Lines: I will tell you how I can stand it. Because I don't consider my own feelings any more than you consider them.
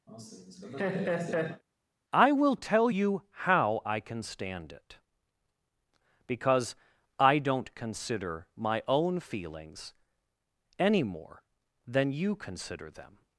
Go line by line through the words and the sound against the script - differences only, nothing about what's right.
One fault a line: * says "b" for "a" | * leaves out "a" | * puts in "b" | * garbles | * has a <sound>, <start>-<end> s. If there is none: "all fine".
* has a laugh, 0.1-1.6 s